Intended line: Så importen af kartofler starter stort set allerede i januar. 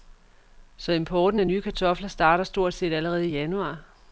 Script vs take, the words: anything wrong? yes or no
yes